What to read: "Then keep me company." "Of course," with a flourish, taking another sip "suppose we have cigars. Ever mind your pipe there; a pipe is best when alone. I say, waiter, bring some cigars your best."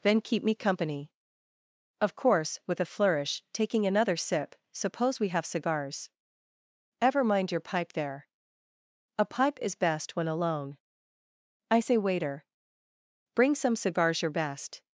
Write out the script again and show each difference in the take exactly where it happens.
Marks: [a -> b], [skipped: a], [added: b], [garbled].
"Then keep me company." "Of course," with a flourish, taking another sip "suppose we have cigars. Ever mind your pipe there; a pipe is best when alone. I say, waiter, bring some cigars your best."